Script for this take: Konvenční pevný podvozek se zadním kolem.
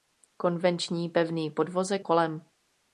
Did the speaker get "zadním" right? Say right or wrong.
wrong